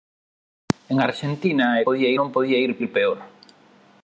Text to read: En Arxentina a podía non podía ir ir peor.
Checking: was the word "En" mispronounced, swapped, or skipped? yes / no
no